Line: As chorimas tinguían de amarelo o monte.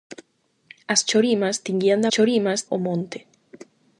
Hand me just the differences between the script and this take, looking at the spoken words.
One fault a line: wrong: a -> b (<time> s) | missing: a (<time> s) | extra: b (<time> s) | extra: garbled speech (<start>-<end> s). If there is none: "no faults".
wrong: amarelo -> chorimas (2.1 s)